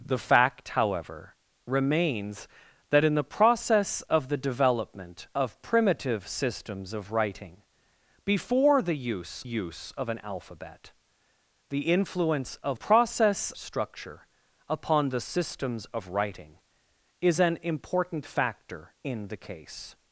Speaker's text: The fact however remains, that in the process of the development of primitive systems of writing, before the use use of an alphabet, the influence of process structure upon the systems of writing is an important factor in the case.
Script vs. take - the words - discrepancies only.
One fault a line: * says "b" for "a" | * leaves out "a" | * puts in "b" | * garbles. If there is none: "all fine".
all fine